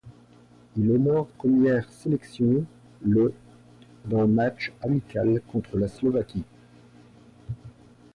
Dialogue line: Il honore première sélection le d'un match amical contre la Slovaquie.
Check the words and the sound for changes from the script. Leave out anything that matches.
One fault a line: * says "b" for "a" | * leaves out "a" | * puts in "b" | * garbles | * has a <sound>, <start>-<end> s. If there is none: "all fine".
all fine